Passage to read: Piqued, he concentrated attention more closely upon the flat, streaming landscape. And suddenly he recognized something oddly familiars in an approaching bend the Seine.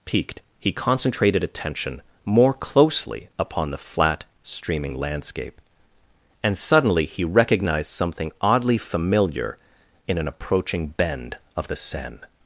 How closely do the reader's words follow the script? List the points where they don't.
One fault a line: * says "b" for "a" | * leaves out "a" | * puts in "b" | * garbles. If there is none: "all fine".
* says "familiar" for "familiars"
* puts in "of"